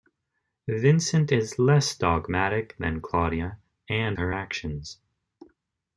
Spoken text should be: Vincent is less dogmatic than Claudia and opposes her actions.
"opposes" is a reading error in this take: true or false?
true